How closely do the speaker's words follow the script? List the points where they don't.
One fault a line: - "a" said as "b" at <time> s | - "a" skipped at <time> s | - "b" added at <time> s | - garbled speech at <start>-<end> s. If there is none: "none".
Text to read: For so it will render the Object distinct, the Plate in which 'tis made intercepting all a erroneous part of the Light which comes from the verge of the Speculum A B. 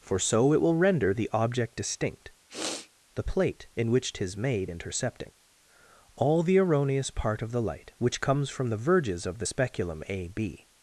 - "a" said as "the" at 6.4 s
- "verge" said as "verges" at 8.8 s